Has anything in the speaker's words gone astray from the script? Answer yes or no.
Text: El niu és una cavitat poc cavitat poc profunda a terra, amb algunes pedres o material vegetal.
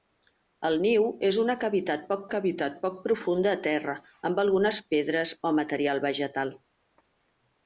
no